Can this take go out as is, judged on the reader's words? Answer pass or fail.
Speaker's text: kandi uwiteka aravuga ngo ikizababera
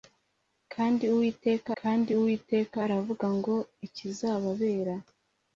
fail